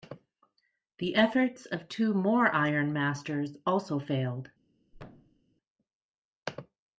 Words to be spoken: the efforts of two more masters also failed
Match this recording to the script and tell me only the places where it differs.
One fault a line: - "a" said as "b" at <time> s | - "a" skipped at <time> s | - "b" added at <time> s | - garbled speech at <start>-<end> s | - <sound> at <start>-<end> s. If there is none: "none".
- "iron" added at 2.5 s
- thud at 4.9-5.4 s